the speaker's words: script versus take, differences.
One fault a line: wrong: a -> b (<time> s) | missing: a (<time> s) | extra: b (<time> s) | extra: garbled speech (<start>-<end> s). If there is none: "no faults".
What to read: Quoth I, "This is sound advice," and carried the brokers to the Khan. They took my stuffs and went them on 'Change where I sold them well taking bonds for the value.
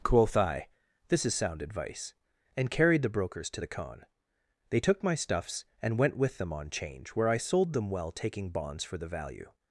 extra: with (6.2 s)